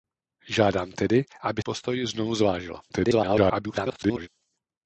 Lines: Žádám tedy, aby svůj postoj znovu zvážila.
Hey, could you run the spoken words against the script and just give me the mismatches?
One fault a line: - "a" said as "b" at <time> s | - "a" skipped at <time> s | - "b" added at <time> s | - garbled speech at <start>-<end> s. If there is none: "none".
- "svůj" skipped at 1.6 s
- garbled speech at 2.9-4.3 s